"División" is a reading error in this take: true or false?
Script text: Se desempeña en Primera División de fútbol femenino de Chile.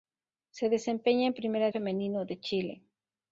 true